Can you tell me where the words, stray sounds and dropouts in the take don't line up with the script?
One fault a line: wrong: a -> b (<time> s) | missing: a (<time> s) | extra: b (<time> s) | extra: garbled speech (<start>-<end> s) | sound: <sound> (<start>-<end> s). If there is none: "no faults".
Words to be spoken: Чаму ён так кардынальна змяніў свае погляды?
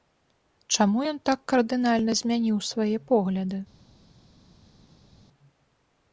no faults